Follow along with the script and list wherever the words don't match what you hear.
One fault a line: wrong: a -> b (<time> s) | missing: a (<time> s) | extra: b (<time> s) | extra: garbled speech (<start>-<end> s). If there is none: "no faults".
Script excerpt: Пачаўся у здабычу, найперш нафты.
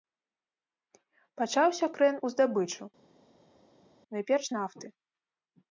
extra: крэн (2.0 s)